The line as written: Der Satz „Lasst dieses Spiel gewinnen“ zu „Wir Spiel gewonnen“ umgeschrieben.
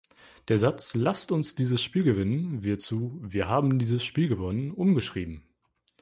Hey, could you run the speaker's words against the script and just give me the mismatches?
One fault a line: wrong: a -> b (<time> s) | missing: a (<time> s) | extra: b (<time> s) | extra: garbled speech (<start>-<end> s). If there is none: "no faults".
extra: uns (1.3 s)
extra: wird (2.6 s)
extra: haben dieses (3.5 s)